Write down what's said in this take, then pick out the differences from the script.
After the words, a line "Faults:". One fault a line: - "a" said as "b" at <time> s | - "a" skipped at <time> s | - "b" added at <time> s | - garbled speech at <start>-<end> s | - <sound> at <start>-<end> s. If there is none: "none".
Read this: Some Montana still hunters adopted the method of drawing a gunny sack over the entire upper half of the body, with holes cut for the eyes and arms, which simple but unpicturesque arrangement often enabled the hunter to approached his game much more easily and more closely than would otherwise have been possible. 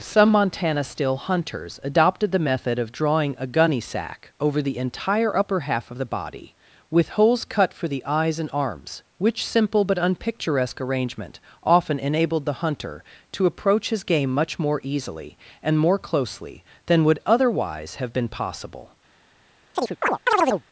Some Montana still hunters adopted the method of drawing a gunny sack over the entire upper half of the body, with holes cut for the eyes and arms, which simple but unpicturesque arrangement often enabled the hunter to approach his game much more easily and more closely than would otherwise have been possible.
Faults:
- "approached" said as "approach" at 13.4 s
- chirp at 19.7-20.6 s